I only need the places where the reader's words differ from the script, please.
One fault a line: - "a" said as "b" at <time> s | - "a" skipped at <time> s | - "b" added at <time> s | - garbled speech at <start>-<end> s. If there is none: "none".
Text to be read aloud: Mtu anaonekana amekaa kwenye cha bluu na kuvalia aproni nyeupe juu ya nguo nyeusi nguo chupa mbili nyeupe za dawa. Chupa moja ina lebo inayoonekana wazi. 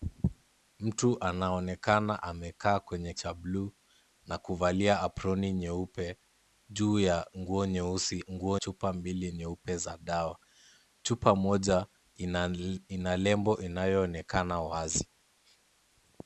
none